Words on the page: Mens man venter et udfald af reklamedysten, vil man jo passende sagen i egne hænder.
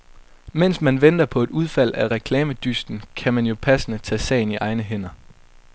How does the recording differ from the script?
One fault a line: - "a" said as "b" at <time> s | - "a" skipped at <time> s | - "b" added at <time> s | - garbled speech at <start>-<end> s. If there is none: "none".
- "på" added at 1.2 s
- "vil" said as "kan" at 3.2 s
- "tage" added at 4.0 s